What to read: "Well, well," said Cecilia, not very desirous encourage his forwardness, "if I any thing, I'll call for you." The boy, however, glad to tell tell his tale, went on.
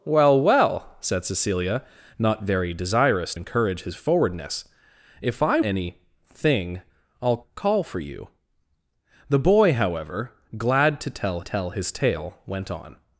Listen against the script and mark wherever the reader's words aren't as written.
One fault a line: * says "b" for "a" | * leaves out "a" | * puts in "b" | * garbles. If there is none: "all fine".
all fine